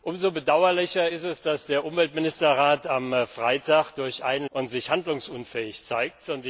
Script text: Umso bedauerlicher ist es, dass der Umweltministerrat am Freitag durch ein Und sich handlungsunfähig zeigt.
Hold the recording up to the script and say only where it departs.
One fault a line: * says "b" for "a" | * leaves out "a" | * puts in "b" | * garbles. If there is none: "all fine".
all fine